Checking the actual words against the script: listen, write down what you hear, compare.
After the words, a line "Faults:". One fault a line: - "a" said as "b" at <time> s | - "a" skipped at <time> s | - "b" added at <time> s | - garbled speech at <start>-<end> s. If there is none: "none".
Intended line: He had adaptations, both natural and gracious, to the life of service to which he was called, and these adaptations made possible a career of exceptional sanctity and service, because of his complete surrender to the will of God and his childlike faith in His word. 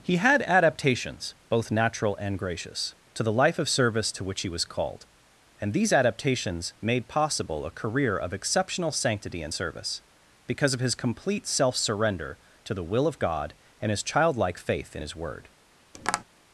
He had adaptations, both natural and gracious, to the life of service to which he was called, and these adaptations made possible a career of exceptional sanctity and service, because of his complete self surrender to the will of God and his childlike faith in His word.
Faults:
- "self" added at 11.5 s